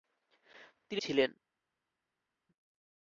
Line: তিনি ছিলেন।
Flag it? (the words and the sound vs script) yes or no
no